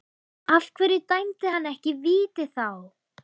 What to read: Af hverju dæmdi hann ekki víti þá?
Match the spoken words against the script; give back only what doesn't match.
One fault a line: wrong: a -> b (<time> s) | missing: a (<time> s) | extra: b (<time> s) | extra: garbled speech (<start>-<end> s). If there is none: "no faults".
no faults